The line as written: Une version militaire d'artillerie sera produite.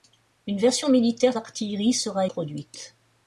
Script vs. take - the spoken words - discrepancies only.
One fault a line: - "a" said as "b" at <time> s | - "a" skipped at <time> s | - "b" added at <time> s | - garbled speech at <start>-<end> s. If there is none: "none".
none